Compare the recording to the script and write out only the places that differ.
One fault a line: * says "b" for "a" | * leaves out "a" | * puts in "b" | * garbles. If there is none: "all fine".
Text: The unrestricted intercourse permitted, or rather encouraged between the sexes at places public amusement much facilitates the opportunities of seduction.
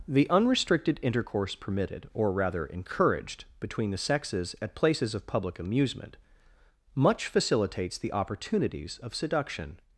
* puts in "of"